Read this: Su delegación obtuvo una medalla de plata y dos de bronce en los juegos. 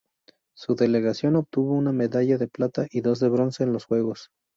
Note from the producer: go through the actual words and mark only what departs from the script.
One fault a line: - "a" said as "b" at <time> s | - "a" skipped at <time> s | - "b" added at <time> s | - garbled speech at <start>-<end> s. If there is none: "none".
none